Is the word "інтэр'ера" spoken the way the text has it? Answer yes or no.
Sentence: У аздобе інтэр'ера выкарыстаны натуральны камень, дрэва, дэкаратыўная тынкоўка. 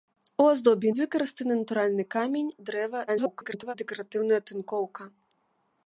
no